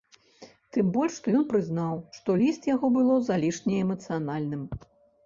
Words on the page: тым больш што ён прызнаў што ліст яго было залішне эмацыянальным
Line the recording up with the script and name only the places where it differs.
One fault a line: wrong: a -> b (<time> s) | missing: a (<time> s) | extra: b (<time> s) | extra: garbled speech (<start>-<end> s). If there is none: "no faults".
no faults